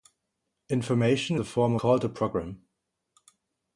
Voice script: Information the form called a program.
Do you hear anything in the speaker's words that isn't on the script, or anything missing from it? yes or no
no